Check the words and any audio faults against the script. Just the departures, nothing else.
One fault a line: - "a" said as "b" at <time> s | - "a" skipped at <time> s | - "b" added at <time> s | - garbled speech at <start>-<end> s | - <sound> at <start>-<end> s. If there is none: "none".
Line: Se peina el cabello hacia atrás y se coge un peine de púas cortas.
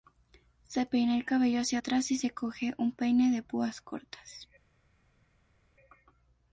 none